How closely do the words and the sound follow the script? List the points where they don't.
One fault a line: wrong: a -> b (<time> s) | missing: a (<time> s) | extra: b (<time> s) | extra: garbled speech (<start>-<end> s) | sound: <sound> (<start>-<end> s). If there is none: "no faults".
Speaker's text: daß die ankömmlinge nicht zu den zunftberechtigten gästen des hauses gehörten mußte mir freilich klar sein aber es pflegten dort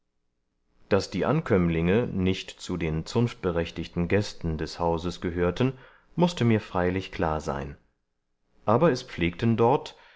no faults